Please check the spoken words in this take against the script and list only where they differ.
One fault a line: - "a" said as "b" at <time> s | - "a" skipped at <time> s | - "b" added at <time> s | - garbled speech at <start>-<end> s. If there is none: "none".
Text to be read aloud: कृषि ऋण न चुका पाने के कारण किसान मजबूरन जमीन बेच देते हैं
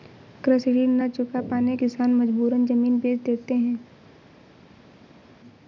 - "के कारण" skipped at 1.8 s